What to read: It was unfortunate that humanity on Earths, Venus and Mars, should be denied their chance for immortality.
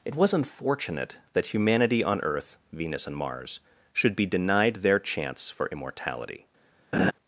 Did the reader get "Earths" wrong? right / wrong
wrong